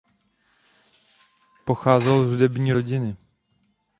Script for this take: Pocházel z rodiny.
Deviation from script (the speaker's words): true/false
true